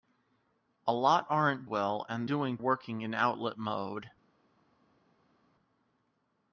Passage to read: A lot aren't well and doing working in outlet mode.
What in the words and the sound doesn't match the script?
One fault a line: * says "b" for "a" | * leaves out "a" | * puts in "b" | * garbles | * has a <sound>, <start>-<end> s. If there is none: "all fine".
all fine